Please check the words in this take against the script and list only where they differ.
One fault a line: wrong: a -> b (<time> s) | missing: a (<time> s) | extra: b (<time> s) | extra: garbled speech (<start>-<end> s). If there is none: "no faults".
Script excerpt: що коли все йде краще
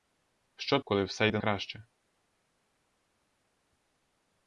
no faults